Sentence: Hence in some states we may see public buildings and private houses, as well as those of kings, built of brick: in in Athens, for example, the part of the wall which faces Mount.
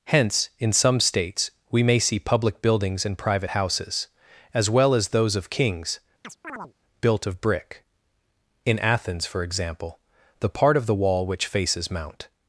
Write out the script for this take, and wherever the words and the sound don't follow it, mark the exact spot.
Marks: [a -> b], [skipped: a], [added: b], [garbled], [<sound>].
Hence in some states we may see public buildings and private houses, as well as those of kings, [chirp] built of brick: in [skipped: in] Athens, for example, the part of the wall which faces Mount.